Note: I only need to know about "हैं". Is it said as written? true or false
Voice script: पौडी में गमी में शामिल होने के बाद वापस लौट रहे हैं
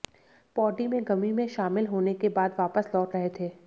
false